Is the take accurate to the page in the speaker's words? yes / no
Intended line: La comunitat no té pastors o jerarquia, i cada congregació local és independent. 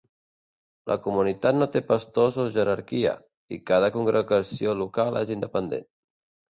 yes